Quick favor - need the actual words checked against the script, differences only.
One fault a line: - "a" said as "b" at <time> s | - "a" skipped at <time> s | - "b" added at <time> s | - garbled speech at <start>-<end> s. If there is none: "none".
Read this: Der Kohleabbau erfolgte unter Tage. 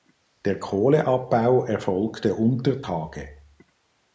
none